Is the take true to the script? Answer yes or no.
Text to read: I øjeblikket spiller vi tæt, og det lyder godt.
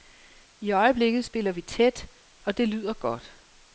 yes